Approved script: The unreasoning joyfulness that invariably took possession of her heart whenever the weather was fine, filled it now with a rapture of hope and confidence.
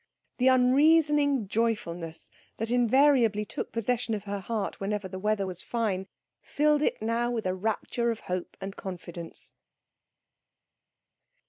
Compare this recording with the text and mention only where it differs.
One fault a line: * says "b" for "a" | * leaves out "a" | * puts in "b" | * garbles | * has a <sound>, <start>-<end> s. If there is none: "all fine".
all fine